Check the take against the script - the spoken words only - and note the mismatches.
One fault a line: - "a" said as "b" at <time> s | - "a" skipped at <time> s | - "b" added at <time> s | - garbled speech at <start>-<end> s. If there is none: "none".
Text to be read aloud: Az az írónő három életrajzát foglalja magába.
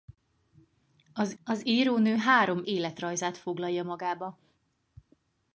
none